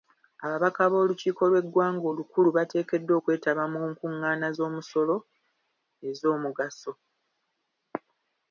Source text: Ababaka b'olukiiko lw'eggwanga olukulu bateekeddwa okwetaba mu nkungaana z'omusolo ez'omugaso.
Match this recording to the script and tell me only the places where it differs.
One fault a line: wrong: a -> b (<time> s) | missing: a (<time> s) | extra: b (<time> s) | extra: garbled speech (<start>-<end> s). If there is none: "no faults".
no faults